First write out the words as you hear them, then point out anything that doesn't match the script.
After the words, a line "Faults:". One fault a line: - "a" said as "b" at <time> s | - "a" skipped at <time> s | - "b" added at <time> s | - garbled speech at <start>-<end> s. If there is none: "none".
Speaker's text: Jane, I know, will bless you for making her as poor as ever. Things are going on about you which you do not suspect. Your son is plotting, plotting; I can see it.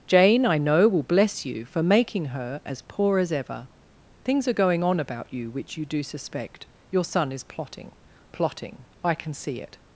Jane, I know, will bless you for making her as poor as ever. Things are going on about you which you do suspect. Your son is plotting, plotting; I can see it.
Faults:
- "not" skipped at 6.0 s